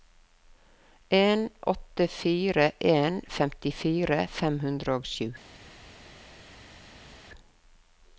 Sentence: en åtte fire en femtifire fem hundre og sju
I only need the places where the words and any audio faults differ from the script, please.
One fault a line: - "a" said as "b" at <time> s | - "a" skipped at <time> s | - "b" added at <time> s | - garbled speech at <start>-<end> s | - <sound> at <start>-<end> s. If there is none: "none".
none